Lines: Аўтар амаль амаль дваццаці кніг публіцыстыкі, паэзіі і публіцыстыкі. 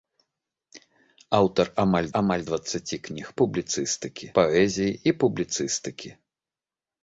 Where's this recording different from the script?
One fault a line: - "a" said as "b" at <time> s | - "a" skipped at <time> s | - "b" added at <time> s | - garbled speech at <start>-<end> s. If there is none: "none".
none